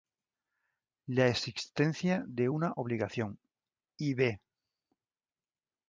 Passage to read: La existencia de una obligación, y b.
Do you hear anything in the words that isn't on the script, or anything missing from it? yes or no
no